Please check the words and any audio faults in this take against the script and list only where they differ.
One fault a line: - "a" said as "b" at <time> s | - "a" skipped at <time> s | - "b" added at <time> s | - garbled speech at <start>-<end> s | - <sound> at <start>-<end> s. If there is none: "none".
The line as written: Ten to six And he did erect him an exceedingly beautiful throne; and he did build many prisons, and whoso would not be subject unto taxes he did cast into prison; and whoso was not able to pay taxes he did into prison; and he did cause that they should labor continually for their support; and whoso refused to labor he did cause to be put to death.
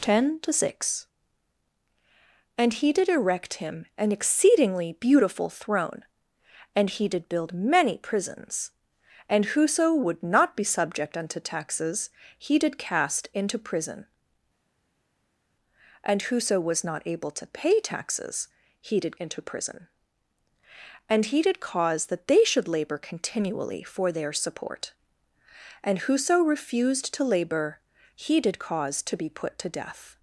none